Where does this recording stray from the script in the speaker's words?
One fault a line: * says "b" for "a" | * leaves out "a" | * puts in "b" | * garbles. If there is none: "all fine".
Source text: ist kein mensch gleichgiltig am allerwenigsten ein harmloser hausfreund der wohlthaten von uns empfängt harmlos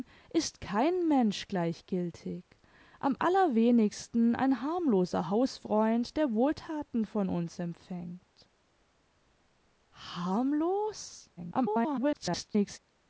* garbles